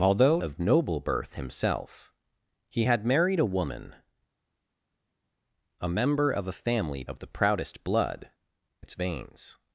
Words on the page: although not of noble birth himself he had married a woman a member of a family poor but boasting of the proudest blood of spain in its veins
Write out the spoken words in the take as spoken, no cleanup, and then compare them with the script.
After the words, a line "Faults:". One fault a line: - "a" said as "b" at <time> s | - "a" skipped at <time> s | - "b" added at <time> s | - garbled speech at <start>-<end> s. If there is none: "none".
although of noble birth himself he had married a woman a member of a family of the proudest blood its veins
Faults:
- "not" skipped at 0.4 s
- "poor but boasting" skipped at 7.0 s
- "of spain in" skipped at 8.3 s